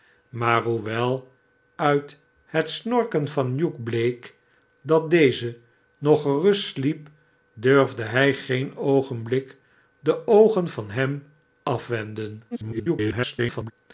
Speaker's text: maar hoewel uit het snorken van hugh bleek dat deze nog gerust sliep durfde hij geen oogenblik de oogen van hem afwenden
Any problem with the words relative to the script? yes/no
yes